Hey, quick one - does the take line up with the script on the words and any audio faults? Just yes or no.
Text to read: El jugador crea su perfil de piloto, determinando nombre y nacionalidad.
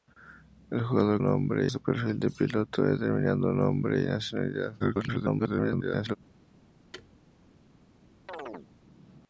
no